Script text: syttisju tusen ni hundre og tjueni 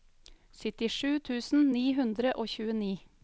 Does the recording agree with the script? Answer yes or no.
yes